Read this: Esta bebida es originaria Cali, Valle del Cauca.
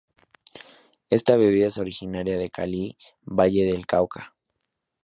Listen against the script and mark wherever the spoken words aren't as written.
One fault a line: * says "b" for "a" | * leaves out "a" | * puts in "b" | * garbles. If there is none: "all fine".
* puts in "de"